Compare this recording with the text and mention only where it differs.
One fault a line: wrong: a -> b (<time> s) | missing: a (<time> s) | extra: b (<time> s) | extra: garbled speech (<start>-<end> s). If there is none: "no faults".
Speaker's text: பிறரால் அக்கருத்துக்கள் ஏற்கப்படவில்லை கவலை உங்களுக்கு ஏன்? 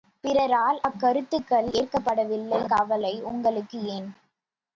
no faults